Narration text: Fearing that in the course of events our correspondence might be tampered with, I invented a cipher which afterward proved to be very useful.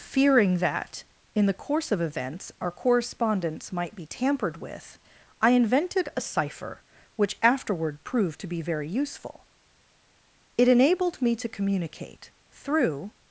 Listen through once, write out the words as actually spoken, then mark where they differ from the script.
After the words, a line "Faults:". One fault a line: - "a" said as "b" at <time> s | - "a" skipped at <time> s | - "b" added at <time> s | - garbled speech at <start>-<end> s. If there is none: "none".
Fearing that in the course of events our correspondence might be tampered with, I invented a cipher which afterward proved to be very useful. It enabled me to communicate, through
Faults:
- "It enabled me to communicate through" added at 10.6 s